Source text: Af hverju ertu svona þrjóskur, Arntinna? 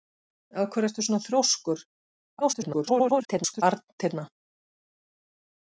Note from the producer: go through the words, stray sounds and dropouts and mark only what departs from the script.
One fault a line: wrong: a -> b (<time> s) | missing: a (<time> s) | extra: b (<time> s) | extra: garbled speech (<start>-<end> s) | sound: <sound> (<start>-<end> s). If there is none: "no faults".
extra: garbled speech (2.4-3.6 s)